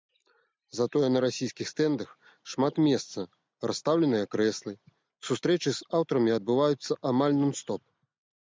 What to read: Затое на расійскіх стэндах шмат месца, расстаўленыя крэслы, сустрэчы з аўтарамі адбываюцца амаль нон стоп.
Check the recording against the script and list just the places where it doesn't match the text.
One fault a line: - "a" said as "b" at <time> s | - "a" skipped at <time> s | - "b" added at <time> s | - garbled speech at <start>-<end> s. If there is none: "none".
none